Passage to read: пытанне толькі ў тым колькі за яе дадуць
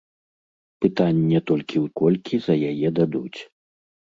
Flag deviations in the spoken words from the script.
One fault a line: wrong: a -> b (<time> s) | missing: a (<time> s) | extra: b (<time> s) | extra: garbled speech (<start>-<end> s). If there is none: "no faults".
missing: тым (1.9 s)